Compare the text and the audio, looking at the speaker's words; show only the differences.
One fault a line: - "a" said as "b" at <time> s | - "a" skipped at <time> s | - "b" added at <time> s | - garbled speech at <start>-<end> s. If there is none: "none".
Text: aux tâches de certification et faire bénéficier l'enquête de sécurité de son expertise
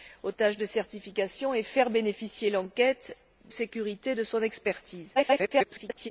- "de" skipped at 3.2 s
- garbled speech at 5.1-6.1 s